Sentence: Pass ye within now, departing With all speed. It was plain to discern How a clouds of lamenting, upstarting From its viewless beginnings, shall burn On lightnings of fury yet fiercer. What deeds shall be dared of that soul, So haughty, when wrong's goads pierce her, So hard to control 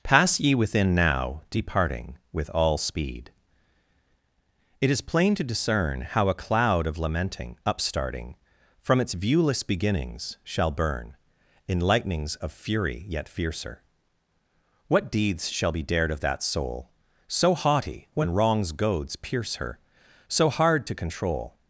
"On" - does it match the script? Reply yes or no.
no